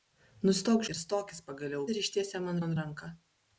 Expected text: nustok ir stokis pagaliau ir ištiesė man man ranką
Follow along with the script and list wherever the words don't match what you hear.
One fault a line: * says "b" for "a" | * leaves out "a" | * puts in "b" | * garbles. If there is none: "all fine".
all fine